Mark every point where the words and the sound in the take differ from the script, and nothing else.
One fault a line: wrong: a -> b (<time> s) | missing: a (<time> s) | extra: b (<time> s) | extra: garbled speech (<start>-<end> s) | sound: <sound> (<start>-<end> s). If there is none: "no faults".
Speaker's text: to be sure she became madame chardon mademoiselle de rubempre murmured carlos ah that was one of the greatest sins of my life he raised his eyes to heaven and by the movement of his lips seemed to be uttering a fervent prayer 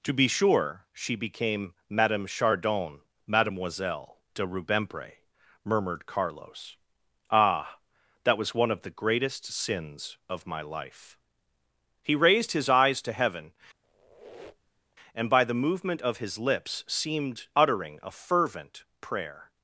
sound: squeak (13.8-15.0 s)
missing: to be (17.5 s)